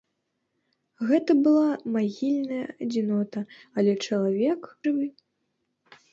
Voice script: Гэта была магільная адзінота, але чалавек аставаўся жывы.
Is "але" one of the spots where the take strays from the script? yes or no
no